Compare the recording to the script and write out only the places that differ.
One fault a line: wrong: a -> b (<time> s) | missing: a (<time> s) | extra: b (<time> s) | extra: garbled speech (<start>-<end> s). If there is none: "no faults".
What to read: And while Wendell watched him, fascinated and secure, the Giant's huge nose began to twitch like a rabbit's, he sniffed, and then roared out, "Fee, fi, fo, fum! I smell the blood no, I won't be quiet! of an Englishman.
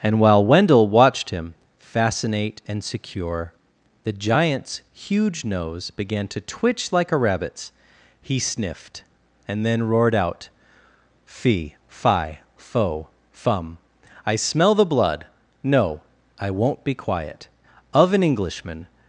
wrong: fascinated -> fascinate (1.8 s)